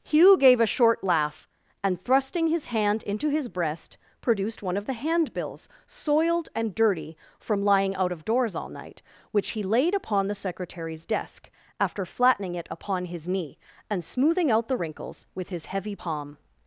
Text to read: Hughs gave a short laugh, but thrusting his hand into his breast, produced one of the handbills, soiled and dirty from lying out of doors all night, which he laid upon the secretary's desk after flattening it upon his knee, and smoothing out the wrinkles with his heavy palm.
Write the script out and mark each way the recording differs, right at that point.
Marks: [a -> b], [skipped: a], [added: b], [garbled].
[Hughs -> Hugh] gave a short laugh, [but -> and] thrusting his hand into his breast, produced one of the handbills, soiled and dirty from lying out of doors all night, which he laid upon the secretary's desk after flattening it upon his knee, and smoothing out the wrinkles with his heavy palm.